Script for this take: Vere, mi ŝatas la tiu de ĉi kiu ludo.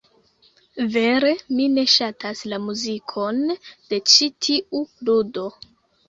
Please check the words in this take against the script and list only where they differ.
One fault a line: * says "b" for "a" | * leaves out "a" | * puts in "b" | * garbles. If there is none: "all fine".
* puts in "ne"
* says "muzikon" for "tiu"
* says "tiu" for "kiu"